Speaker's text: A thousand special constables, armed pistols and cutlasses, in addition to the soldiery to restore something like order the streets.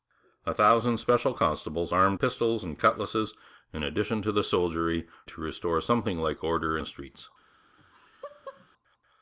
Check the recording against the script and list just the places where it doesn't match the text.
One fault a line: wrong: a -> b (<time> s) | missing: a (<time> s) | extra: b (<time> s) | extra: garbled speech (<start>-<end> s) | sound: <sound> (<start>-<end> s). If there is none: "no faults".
sound: laugh (7.8-8.7 s)